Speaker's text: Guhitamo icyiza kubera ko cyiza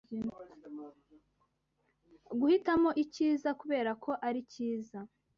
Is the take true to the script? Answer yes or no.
no